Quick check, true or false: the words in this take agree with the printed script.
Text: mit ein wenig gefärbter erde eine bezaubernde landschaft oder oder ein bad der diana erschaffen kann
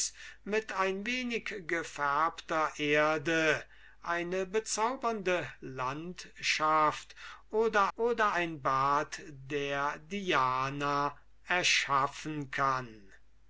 true